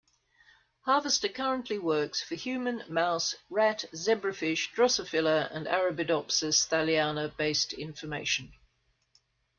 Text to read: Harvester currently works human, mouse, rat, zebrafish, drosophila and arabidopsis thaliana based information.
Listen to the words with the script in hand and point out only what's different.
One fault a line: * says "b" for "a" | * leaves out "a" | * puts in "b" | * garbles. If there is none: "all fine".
* puts in "for"